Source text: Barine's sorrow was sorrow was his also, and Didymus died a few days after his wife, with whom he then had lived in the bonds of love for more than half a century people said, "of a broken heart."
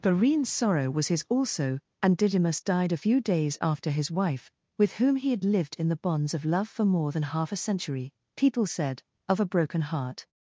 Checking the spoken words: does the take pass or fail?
fail